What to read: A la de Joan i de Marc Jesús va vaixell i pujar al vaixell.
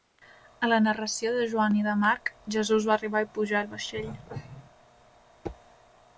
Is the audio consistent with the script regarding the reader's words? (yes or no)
no